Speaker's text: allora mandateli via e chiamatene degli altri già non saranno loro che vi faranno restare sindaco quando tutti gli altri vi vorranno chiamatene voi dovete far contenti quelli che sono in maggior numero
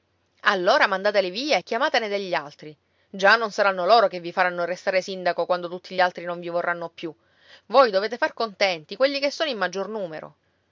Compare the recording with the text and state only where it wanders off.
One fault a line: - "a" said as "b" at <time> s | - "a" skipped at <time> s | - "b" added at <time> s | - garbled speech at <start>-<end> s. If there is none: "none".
- "non" added at 6.2 s
- "chiamatene" said as "più" at 6.9 s